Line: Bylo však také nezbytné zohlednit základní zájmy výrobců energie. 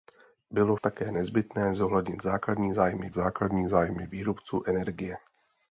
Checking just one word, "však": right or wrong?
wrong